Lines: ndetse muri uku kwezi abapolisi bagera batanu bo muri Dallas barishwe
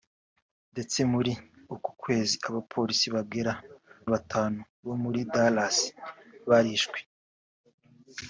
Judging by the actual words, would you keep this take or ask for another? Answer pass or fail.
pass